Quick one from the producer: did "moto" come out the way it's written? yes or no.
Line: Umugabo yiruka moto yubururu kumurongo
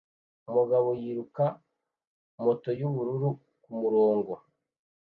yes